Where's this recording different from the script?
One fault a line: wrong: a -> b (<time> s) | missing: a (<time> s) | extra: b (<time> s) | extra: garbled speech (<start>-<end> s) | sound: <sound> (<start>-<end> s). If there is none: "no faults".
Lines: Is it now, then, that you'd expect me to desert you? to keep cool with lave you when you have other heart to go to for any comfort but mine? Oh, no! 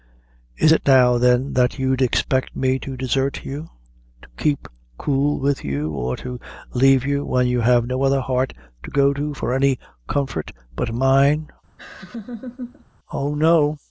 extra: you or to (5.6 s)
extra: no (7.8 s)
sound: laugh (11.8-12.8 s)